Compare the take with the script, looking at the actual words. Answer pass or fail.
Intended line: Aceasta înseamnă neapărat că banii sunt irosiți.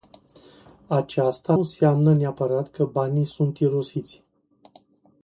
pass